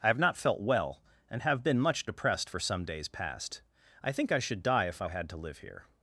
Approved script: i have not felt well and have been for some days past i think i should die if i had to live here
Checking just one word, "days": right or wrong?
right